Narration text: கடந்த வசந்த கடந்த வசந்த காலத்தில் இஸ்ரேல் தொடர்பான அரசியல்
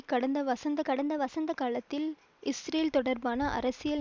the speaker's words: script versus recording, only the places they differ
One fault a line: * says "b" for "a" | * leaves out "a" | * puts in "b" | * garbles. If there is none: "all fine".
all fine